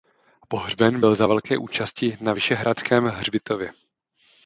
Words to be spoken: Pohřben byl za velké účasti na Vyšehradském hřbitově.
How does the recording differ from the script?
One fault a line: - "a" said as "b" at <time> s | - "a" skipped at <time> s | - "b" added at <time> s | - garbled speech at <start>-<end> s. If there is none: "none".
none